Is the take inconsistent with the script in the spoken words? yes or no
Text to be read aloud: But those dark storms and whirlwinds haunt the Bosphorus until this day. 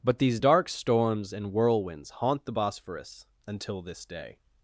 yes